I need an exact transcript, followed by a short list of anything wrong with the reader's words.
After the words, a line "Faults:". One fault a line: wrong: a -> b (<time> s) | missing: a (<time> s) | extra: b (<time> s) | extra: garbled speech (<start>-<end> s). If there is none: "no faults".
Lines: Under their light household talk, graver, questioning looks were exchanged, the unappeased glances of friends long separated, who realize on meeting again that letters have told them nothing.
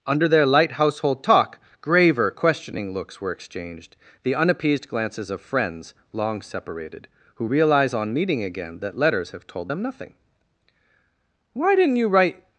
Under their light household talk, graver, questioning looks were exchanged, the unappeased glances of friends long separated, who realize on meeting again that letters have told them nothing. "Why didn't you write
Faults:
extra: Why didn't you write (11.5 s)